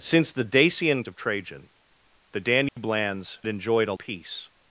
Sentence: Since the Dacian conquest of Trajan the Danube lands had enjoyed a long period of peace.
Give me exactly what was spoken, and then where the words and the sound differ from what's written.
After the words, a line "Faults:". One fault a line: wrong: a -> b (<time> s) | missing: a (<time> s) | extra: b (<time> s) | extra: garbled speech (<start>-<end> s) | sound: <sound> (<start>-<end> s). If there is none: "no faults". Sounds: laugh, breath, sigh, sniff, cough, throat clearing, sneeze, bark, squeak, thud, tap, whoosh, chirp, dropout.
Since the Dacian of Trajan the Danube lands enjoyed a peace.
Faults:
missing: conquest (1.0 s)
sound: dropout (2.7-2.8 s)
missing: had (3.4 s)
missing: long period of (3.9 s)